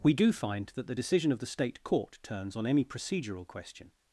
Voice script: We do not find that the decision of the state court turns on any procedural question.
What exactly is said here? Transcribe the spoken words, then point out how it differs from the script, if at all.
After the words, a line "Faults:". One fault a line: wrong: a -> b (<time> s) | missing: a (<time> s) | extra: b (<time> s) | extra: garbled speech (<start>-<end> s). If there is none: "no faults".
We do find that the decision of the state court turns on any procedural question.
Faults:
missing: not (0.3 s)